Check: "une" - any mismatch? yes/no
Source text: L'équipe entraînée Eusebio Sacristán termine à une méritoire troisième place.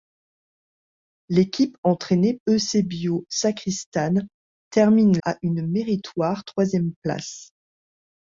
no